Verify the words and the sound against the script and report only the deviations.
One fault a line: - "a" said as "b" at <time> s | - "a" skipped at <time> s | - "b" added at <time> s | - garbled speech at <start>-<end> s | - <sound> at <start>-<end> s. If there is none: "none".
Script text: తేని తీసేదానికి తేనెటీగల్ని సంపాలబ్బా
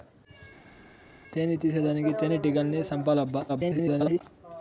- garbled speech at 3.5-4.2 s